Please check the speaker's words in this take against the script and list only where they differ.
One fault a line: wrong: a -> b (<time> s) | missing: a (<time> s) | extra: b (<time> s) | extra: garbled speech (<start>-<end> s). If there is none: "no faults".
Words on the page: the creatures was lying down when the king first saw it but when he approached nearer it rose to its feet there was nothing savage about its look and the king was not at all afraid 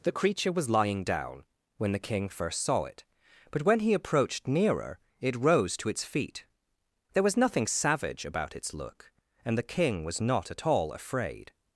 wrong: creatures -> creature (0.1 s)